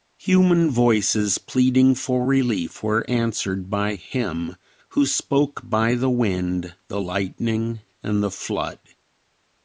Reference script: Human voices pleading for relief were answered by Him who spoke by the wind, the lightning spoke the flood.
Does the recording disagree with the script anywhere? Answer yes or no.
yes